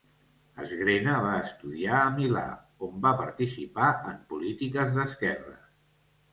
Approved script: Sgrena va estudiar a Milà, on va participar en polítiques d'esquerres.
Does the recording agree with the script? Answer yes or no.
yes